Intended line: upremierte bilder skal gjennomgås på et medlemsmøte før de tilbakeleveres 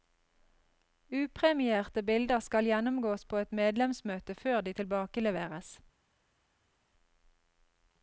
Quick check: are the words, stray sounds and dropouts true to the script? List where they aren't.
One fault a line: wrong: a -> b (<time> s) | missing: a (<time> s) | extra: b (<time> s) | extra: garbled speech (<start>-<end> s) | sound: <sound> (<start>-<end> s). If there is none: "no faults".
no faults